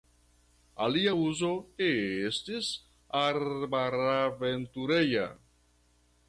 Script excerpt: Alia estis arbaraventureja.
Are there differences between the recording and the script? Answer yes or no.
yes